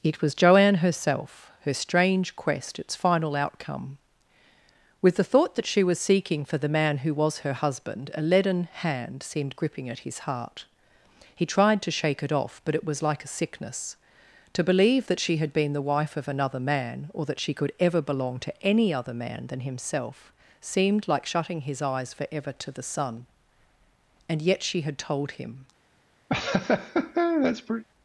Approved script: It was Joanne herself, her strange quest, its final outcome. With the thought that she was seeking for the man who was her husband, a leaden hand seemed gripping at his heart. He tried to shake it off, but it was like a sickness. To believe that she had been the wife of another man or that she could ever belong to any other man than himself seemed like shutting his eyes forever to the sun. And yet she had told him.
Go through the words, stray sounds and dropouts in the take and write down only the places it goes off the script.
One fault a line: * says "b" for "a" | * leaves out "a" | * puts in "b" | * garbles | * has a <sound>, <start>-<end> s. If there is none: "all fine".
* has a laugh, 26.3-27.8 s